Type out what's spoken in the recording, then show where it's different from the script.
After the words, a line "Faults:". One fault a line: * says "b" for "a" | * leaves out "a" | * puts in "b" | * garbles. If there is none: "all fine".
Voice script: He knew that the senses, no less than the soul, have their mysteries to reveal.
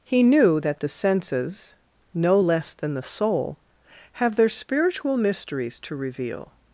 He knew that the senses, no less than the soul, have their spiritual mysteries to reveal.
Faults:
* puts in "spiritual"